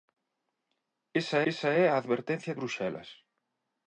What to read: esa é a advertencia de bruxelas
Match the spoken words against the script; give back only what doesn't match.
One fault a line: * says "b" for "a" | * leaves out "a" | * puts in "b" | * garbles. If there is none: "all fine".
* puts in "esa"
* leaves out "de"